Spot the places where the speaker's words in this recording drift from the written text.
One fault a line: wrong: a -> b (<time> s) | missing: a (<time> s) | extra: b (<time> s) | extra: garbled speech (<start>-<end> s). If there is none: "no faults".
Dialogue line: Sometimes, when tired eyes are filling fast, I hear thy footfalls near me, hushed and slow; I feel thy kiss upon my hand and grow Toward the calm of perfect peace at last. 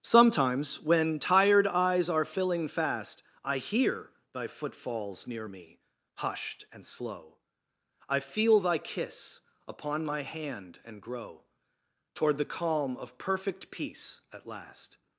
no faults